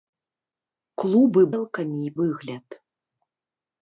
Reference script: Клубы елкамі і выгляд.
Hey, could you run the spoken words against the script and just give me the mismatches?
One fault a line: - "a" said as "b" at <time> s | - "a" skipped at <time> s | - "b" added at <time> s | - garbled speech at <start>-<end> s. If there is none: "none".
none